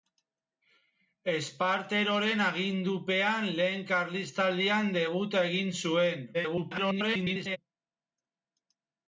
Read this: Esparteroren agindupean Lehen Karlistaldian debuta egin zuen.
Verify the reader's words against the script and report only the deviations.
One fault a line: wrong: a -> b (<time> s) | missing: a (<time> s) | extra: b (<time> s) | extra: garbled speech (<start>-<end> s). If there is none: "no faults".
extra: garbled speech (6.3-7.6 s)